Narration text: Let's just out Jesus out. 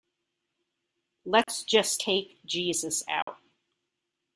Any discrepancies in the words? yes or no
yes